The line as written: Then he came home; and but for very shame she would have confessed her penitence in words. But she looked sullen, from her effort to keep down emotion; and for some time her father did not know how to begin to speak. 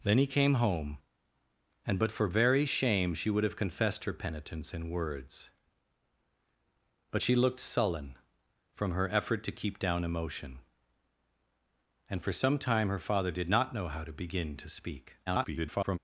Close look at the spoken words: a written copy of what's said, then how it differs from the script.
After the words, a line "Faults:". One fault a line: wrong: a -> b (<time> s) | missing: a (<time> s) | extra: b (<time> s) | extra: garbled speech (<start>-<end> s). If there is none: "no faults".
Then he came home; and but for very shame she would have confessed her penitence in words. But she looked sullen, from her effort to keep down emotion; and for some time her father did not know how to begin to speak. [garbled]
Faults:
extra: garbled speech (15.3-16.0 s)